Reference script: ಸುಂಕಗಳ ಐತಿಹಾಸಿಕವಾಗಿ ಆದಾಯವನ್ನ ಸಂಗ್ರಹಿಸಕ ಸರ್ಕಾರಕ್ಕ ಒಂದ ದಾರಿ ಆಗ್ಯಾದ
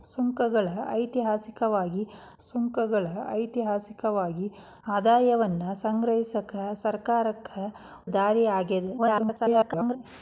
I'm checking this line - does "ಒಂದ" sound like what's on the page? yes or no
no